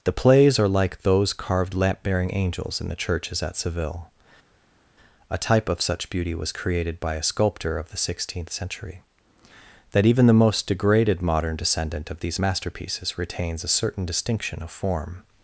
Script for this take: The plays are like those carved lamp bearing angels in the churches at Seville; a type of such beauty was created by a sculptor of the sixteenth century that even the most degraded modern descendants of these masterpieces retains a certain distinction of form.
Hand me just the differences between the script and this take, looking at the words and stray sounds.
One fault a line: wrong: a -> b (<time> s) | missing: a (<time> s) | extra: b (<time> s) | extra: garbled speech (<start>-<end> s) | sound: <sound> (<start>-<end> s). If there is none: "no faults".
wrong: descendants -> descendant (11.6 s)